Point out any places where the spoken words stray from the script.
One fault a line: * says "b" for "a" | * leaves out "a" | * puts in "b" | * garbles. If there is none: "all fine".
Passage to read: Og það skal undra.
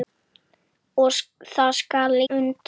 all fine